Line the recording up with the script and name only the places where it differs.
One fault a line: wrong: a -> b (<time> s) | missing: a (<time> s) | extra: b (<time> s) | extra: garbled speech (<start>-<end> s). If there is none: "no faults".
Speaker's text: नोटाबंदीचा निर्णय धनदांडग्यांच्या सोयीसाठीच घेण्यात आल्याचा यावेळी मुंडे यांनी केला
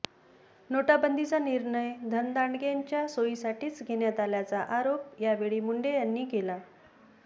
extra: आरोप (4.7 s)